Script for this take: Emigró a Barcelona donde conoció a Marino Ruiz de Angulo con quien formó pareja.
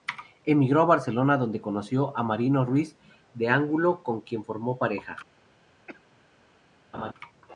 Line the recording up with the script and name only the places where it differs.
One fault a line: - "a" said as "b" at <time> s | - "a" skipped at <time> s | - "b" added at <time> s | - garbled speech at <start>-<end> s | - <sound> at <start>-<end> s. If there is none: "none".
- cough at 5.9-6.2 s
- laugh at 6.9-7.1 s